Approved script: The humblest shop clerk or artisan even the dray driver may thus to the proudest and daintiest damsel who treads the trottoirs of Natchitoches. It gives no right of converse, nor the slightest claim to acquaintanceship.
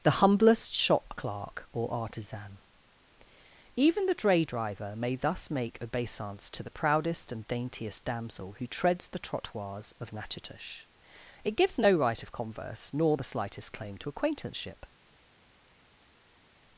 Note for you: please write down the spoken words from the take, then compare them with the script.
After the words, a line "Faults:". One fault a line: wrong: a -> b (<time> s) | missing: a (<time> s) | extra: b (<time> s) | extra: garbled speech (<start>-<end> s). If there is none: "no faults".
The humblest shop clerk or artisan even the dray driver may thus make obeisance to the proudest and daintiest damsel who treads the trottoirs of Natchitoches. It gives no right of converse, nor the slightest claim to acquaintanceship.
Faults:
extra: make obeisance (5.5 s)